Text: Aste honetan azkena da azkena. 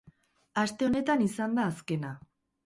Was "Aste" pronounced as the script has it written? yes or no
yes